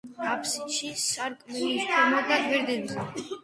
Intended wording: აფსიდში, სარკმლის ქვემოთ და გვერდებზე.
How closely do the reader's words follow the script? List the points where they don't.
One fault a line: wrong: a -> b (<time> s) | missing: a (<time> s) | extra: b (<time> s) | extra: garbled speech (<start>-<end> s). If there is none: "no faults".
no faults